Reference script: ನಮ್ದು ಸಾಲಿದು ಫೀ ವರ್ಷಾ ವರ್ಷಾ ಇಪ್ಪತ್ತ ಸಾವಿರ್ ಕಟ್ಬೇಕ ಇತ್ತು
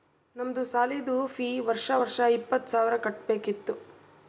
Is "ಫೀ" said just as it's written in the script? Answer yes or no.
yes